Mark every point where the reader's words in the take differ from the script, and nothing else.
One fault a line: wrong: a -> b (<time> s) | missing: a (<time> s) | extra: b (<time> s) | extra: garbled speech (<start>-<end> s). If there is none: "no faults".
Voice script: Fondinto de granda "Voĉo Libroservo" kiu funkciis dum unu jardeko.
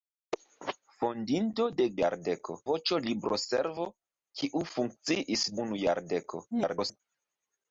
wrong: granda -> jardeko (2.0 s)
missing: dum (5.5 s)
extra: garbled speech (6.5-7.0 s)